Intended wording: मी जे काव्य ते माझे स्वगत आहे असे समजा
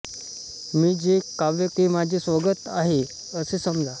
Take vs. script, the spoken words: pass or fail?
pass